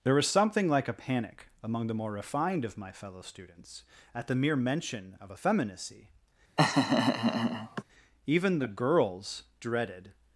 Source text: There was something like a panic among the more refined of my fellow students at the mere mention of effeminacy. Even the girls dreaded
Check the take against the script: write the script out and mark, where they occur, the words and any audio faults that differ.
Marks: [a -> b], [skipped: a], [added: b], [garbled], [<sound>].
There was something like a panic among the more refined of my fellow students at the mere mention of effeminacy. [laugh] Even the girls dreaded